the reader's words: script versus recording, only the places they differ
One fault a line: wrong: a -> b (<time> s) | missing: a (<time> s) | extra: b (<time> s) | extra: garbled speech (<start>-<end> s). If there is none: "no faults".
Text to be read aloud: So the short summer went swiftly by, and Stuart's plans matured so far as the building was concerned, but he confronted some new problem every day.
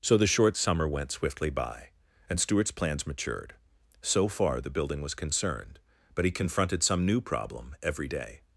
missing: as (4.6 s)